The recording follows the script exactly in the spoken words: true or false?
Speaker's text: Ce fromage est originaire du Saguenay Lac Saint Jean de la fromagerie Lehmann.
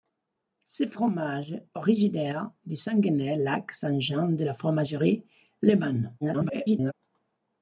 false